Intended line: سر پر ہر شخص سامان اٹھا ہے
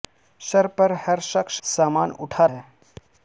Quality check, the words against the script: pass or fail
pass